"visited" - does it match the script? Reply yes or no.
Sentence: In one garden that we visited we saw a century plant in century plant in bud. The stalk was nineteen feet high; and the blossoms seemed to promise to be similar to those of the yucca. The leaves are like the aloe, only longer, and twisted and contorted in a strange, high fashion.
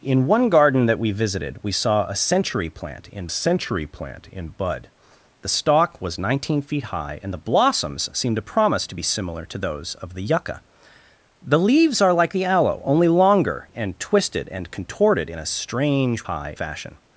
yes